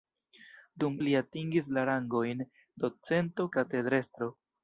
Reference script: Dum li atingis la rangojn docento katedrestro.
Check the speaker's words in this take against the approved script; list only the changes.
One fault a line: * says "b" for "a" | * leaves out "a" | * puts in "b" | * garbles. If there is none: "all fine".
all fine